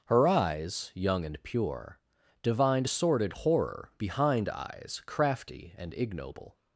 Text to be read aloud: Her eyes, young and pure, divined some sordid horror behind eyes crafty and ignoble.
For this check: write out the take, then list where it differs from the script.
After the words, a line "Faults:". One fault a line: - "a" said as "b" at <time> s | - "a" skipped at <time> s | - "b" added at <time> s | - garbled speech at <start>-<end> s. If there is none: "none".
Her eyes, young and pure, divined sordid horror behind eyes crafty and ignoble.
Faults:
- "some" skipped at 2.9 s